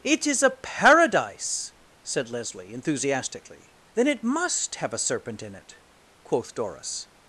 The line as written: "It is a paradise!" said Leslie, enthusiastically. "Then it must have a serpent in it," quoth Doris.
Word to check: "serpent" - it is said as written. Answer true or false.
true